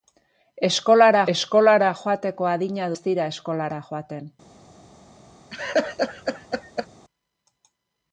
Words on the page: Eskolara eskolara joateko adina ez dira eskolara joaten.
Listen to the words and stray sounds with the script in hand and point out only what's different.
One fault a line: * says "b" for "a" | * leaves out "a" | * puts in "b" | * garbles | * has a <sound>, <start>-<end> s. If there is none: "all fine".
* has a laugh, 5.5-6.9 s